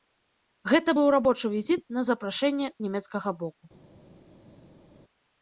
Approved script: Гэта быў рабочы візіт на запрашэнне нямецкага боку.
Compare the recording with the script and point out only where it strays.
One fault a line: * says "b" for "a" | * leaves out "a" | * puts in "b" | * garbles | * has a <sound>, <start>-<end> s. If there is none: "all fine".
all fine